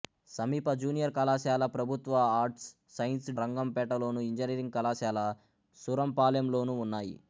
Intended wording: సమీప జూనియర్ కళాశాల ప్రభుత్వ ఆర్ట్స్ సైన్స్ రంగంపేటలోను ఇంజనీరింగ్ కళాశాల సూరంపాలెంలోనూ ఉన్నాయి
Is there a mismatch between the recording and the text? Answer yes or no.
no